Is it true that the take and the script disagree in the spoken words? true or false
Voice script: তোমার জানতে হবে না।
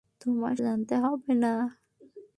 false